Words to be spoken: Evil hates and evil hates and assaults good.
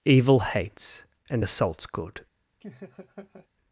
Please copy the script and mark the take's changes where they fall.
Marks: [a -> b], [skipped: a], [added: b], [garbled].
Evil hates and [skipped: evil hates and] assaults good.